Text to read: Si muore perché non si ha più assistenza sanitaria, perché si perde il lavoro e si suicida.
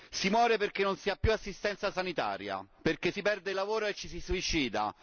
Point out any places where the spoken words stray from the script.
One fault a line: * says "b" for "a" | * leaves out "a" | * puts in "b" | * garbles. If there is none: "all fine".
* puts in "ci"